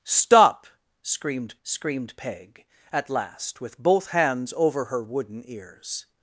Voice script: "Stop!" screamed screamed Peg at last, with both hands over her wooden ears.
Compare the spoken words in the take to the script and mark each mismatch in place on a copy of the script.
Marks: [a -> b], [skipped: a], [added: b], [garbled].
"Stop!" screamed screamed Peg at last, with both hands over her wooden ears.